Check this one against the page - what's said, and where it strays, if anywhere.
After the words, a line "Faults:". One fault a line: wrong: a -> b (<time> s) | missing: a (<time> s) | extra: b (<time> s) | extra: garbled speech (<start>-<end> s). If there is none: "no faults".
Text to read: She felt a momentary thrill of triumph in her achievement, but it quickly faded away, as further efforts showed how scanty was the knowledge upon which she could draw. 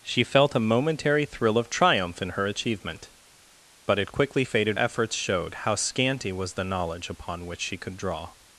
She felt a momentary thrill of triumph in her achievement, but it quickly faded efforts showed how scanty was the knowledge upon which she could draw.
Faults:
missing: away as further (4.8 s)